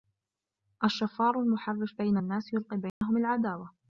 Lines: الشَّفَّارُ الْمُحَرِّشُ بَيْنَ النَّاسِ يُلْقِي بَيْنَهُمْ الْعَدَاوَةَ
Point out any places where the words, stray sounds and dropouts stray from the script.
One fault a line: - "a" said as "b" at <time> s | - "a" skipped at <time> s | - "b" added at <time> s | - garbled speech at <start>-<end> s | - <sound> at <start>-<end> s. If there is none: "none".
- dropout at 2.9-3.0 s